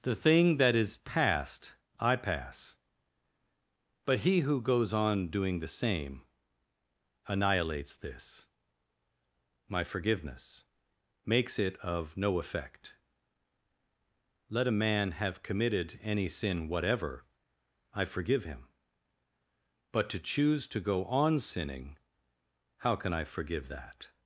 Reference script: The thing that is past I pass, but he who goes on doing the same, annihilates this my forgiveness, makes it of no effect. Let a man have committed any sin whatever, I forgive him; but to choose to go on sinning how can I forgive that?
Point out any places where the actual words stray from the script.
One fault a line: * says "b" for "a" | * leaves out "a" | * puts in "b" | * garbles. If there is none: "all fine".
all fine